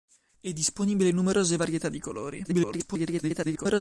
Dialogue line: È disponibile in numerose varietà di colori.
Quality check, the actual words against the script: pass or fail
fail